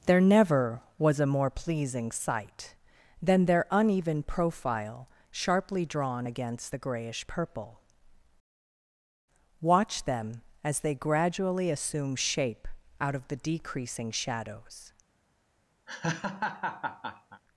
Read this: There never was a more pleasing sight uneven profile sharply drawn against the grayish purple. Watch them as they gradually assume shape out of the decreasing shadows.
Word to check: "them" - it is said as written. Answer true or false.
true